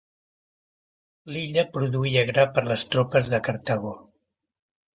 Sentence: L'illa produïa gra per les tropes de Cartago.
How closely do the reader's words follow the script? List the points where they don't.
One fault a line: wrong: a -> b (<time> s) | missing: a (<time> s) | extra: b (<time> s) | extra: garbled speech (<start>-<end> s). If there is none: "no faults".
no faults